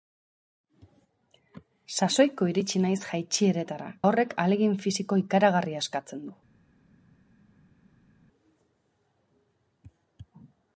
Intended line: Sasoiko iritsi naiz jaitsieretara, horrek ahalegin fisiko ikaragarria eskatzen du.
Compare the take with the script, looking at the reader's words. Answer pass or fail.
pass